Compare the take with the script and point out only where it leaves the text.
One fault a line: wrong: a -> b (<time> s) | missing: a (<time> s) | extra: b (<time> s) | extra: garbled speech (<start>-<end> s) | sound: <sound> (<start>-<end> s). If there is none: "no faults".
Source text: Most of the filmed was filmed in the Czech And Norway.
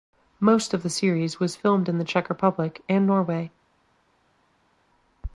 wrong: filmed -> series (0.9 s)
extra: Republic (2.3 s)